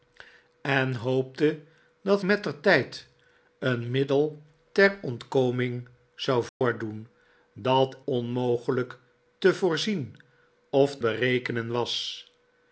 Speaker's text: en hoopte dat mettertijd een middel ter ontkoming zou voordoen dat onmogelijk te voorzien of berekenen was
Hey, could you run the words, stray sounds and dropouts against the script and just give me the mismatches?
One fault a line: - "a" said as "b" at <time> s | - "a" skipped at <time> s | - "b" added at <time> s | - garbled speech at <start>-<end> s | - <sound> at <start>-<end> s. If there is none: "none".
- dropout at 6.5-6.6 s